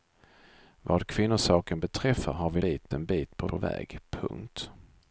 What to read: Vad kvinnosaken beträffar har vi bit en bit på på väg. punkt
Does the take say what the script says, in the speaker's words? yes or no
yes